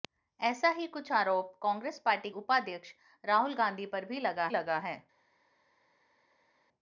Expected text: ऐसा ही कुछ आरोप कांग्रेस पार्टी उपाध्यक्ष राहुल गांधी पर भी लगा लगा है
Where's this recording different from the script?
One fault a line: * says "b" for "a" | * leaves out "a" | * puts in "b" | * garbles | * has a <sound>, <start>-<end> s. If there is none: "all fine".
all fine